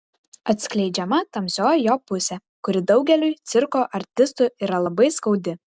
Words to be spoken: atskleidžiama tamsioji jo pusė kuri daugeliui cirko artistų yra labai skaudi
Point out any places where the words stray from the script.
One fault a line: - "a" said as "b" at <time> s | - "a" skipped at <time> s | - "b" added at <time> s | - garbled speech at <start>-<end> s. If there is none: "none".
none